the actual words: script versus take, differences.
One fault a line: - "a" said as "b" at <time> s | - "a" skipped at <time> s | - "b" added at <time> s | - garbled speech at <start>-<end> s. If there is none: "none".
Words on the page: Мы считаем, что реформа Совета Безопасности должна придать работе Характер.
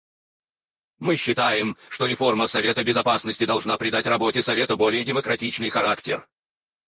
- "Совета более демократичный" added at 4.4 s